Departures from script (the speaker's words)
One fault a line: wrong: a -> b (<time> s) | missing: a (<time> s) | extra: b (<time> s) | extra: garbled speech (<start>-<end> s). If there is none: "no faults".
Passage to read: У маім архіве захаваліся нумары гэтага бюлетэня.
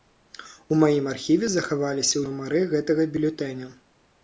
no faults